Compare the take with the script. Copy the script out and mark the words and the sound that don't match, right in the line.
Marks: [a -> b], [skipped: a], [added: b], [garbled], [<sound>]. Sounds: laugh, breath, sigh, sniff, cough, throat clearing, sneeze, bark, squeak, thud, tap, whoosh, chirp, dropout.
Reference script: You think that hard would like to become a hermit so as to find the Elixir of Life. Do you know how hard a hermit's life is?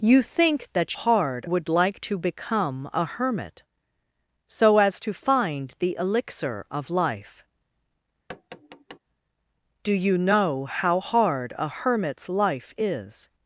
You think that hard would like to become a hermit so as to find the Elixir of Life. [tap] Do you know how hard a hermit's life is?